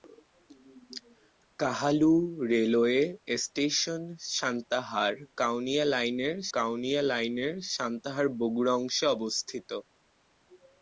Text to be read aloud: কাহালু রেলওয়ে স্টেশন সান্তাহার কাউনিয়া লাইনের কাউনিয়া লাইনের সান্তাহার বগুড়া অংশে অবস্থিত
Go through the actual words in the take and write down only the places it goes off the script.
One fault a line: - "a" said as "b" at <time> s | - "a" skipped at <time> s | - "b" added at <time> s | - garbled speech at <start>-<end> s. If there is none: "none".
none